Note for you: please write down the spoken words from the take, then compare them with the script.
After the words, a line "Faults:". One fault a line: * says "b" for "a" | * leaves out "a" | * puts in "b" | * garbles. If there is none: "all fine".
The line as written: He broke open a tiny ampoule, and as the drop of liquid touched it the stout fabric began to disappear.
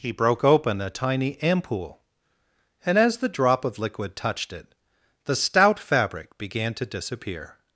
He broke open a tiny ampoule, and as the drop of liquid touched it the stout fabric began to disappear.
Faults:
all fine